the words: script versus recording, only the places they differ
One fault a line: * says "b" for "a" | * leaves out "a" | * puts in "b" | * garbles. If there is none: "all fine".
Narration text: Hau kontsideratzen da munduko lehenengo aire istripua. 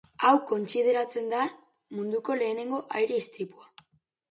all fine